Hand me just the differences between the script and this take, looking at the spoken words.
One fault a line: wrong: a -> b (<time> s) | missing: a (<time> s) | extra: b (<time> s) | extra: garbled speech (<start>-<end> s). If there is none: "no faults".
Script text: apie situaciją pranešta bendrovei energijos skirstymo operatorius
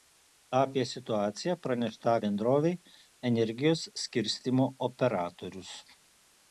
no faults